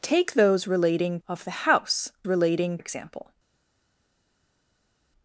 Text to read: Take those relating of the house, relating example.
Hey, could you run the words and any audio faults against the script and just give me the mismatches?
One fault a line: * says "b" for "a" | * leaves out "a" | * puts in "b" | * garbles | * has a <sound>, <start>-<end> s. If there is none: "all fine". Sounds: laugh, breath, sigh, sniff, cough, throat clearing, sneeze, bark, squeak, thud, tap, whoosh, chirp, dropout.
all fine